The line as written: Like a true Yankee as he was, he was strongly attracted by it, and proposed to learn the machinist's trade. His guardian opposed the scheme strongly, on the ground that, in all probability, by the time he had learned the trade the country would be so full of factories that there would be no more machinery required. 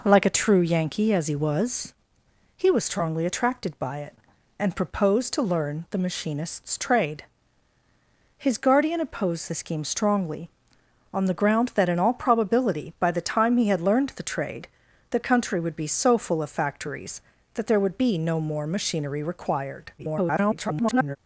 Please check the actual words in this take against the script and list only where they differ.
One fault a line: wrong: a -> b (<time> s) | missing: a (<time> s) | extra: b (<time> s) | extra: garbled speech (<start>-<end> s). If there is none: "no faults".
extra: garbled speech (20.0-21.2 s)